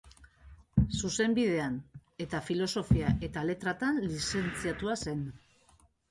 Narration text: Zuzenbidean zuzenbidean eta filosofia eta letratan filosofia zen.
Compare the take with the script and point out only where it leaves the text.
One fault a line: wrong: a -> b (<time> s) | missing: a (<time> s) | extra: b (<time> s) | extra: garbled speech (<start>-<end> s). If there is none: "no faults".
missing: zuzenbidean (1.8 s)
wrong: filosofia -> lizentziatua (4.1 s)